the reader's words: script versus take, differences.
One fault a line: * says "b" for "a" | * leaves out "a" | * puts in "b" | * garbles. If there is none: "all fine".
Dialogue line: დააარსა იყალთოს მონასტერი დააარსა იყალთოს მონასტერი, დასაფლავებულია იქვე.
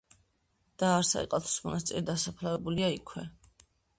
* leaves out "დააარსა იყალთოს მონასტერი"